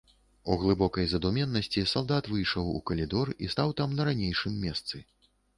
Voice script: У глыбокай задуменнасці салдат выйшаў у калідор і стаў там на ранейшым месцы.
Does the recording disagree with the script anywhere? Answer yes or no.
no